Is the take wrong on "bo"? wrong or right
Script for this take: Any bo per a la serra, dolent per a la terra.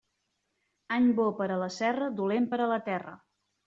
right